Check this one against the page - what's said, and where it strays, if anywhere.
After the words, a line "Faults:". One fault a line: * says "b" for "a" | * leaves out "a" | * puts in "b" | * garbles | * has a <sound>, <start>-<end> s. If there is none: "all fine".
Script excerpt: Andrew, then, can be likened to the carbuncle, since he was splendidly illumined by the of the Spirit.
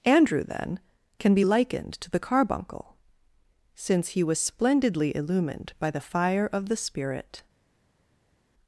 Andrew, then, can be likened to the carbuncle, since he was splendidly illumined by the fire of the Spirit.
Faults:
* puts in "fire"